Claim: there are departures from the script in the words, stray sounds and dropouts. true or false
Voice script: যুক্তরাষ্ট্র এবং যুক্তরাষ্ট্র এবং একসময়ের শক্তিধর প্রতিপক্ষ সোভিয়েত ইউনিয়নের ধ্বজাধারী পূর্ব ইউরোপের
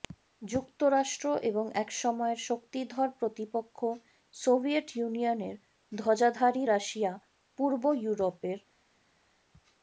true